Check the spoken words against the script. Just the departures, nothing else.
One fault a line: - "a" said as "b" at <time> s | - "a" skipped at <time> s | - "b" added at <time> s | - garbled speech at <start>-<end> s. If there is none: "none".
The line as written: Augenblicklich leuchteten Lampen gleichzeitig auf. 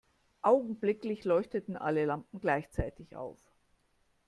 - "alle" added at 1.8 s